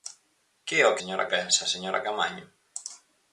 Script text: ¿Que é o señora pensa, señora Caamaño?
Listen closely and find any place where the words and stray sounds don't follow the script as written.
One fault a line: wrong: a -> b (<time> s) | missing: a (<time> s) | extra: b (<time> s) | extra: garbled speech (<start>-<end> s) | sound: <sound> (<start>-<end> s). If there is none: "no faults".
no faults